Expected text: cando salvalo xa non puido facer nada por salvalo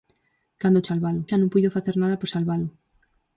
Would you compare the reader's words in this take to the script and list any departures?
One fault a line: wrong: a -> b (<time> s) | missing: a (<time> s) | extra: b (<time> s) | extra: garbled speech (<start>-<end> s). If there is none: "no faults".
no faults